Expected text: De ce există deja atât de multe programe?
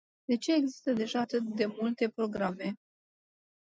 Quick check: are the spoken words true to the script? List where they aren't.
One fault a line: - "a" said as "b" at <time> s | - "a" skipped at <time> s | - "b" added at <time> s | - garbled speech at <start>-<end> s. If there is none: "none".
none